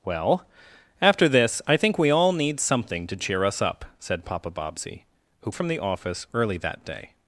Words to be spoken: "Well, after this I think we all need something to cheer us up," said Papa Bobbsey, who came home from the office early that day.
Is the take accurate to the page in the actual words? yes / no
no